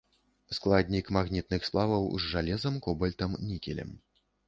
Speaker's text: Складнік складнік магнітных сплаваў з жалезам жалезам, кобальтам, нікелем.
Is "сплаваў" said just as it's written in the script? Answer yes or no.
yes